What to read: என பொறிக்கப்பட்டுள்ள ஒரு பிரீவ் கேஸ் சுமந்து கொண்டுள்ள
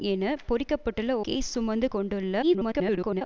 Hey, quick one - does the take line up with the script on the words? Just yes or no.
no